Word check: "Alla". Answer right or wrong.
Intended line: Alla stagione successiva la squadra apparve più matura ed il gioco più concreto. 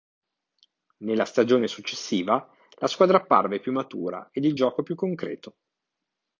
wrong